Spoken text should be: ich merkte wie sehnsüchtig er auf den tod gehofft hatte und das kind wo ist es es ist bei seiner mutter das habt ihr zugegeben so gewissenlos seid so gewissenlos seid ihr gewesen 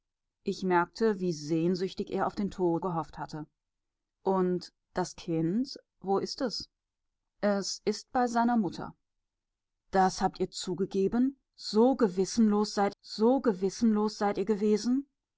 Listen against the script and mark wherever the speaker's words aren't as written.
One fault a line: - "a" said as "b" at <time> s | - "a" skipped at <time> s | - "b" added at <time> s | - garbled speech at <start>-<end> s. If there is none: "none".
none